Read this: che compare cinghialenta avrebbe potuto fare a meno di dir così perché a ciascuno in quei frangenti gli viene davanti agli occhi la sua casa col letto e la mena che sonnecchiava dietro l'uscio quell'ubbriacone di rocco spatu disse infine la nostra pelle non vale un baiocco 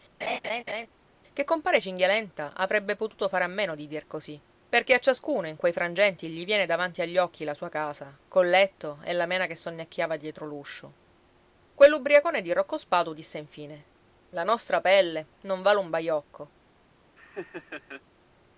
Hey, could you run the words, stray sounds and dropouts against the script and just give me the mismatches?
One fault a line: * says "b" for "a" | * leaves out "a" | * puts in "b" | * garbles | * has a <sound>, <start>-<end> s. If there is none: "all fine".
* has a laugh, 0.2-0.9 s
* has a laugh, 17.2-18.0 s